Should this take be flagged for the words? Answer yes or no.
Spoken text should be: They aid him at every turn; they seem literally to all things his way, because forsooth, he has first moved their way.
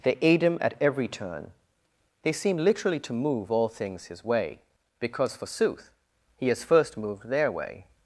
yes